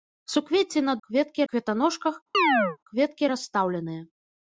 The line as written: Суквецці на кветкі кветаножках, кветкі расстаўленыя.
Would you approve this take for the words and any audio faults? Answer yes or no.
no